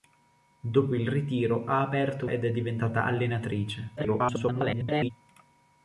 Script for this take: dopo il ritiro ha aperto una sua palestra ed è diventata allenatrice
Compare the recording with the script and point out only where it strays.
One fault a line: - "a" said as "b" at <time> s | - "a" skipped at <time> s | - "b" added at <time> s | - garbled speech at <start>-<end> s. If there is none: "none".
- "una sua palestra" skipped at 2.2 s
- garbled speech at 4.0-5.1 s